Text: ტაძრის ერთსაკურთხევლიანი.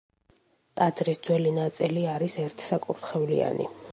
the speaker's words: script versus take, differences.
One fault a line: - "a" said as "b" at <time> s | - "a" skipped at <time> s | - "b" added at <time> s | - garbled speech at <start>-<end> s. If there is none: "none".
- "ძველი ნაწილი არის" added at 1.3 s